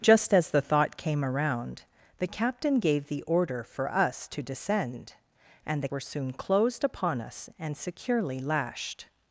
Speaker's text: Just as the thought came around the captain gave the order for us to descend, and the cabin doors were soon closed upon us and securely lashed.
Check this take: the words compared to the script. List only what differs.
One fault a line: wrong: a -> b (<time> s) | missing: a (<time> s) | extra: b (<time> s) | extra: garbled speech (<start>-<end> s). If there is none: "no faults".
missing: cabin doors (5.9 s)